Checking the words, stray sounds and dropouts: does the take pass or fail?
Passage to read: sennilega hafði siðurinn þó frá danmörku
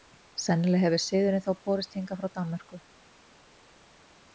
fail